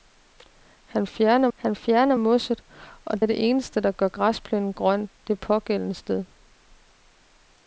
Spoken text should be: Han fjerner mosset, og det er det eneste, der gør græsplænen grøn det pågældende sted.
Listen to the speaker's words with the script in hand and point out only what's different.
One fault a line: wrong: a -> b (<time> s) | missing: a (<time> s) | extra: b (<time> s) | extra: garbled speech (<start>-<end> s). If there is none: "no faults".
extra: han fjerner (1.5 s)
missing: det (3.2 s)